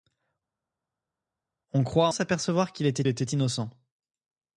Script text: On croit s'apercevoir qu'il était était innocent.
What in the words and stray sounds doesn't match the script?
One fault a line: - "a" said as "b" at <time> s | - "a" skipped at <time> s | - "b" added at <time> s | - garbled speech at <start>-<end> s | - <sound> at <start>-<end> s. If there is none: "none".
none